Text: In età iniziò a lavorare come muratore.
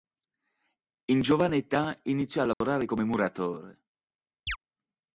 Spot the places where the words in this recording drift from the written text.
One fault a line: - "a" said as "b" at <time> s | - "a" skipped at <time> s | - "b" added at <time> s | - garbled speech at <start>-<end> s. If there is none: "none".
- "giovane" added at 1.2 s